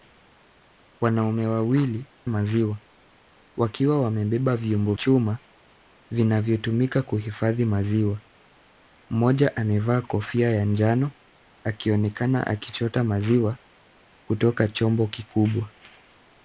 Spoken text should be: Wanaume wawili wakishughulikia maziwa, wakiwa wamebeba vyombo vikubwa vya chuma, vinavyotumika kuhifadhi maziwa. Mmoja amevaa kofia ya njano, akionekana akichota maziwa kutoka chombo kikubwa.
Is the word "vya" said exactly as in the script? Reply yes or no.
no